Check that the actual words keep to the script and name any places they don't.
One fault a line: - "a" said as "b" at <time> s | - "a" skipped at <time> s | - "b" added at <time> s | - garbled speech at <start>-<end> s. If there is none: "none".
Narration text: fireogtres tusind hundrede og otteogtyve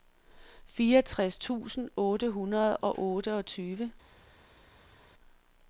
- "otte" added at 2.0 s